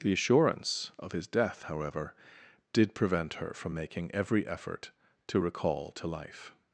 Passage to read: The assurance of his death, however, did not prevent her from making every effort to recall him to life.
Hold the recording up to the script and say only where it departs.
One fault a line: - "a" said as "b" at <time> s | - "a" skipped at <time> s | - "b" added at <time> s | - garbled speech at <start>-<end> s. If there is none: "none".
- "not" skipped at 2.9 s
- "him" skipped at 5.9 s